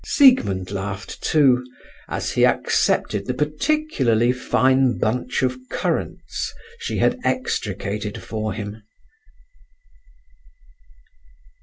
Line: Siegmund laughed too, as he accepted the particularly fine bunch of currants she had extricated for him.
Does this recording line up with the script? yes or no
yes